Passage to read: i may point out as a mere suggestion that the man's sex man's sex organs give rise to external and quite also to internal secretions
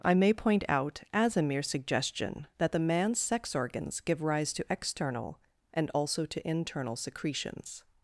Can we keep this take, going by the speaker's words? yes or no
no